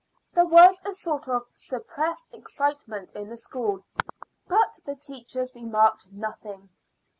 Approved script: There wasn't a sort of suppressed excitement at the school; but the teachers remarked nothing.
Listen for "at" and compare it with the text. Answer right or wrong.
wrong